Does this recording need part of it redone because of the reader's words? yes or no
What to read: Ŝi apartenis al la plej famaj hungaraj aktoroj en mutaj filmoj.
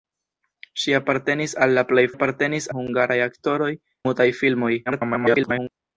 yes